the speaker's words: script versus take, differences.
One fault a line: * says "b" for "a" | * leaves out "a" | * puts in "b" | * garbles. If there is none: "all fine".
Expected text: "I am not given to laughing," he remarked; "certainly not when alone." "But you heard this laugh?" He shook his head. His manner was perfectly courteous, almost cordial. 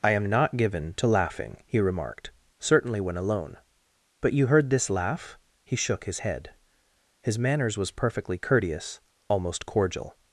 * leaves out "not"
* says "manners" for "manner"